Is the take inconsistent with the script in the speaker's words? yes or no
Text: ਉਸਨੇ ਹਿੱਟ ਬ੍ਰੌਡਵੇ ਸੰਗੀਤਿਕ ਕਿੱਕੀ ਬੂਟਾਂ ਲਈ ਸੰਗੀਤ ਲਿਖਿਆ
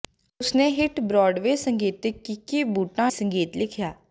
yes